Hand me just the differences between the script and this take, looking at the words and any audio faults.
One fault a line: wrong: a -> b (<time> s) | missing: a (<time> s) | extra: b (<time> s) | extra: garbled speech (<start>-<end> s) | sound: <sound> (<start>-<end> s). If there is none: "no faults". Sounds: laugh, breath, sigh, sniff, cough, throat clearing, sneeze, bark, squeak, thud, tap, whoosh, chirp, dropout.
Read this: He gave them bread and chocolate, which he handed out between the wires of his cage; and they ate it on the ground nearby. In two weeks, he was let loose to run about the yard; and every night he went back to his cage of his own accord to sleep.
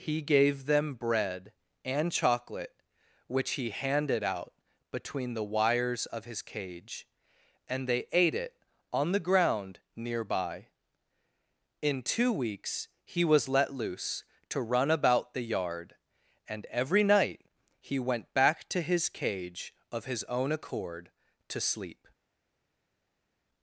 no faults